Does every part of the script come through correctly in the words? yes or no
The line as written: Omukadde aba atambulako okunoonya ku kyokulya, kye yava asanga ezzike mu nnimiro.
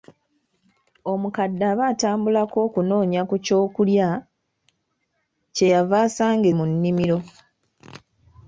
no